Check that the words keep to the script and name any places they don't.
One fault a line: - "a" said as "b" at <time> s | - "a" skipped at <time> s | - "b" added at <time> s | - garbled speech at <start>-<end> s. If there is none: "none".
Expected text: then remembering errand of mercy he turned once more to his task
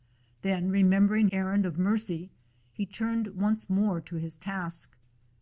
none